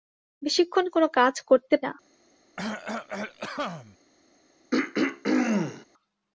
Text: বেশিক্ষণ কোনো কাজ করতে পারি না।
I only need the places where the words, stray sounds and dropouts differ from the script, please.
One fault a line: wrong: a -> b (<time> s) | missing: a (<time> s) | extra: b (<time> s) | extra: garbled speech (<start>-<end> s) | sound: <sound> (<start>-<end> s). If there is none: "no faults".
missing: পারি (1.8 s)
sound: cough (2.6-4.0 s)
sound: throat clearing (4.7-5.9 s)